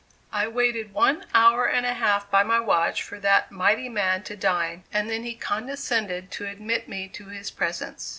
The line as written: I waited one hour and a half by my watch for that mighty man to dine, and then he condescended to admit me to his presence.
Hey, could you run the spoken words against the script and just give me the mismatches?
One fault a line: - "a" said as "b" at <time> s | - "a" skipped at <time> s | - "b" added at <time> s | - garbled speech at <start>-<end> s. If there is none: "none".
none